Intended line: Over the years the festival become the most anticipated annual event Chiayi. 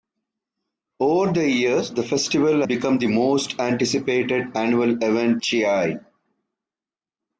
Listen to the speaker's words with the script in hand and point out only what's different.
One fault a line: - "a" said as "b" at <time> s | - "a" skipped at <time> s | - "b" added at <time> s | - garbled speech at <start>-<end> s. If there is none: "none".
none